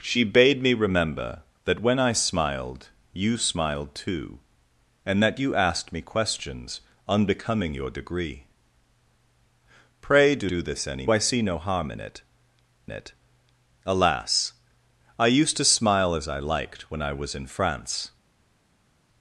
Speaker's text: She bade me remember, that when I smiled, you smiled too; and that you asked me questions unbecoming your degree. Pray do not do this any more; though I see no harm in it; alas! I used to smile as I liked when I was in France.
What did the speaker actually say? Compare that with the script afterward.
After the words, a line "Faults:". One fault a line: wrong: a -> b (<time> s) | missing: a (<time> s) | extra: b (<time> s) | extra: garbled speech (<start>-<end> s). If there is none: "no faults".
She bade me remember, that when I smiled, you smiled too; and that you asked me questions unbecoming your degree. Pray do do this any I see no harm in it it; alas! I used to smile as I liked when I was in France.
Faults:
missing: not (10.5 s)
missing: more though (11.1 s)
extra: it (12.9 s)